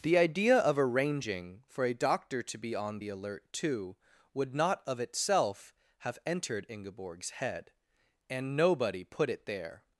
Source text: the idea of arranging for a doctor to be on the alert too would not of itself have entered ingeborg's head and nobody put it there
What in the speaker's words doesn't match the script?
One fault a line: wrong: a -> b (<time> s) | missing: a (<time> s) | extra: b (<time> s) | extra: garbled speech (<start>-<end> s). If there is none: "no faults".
no faults